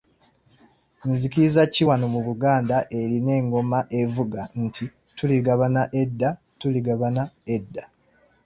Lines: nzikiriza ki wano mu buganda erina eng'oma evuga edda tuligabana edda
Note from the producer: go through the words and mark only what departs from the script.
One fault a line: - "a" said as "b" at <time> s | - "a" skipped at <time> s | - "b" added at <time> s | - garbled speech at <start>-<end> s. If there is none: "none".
- "nti tuligabana" added at 4.6 s